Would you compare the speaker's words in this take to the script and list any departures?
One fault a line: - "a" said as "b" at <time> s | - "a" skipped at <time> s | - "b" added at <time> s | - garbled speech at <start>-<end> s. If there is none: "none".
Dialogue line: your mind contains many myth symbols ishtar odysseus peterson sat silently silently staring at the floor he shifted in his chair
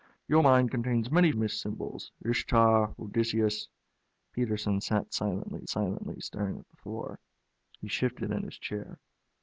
none